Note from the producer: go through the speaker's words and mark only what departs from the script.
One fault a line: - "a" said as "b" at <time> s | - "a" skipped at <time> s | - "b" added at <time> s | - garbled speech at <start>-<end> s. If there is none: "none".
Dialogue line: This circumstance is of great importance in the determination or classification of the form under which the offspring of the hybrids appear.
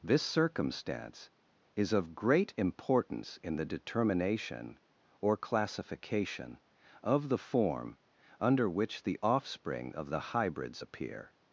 none